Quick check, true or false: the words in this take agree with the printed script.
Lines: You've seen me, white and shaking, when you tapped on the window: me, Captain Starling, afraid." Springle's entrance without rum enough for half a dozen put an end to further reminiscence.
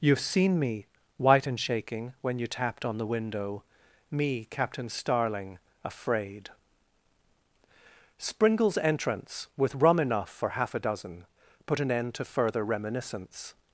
false